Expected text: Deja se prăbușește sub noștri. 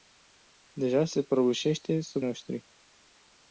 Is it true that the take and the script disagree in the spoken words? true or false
false